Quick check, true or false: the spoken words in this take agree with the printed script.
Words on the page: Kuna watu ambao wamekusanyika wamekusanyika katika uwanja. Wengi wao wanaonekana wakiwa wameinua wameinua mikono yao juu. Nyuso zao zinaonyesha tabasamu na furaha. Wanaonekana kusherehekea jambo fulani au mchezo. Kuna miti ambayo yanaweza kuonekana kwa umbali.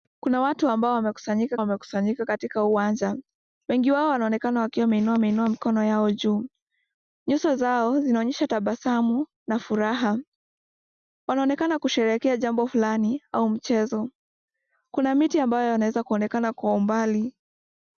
true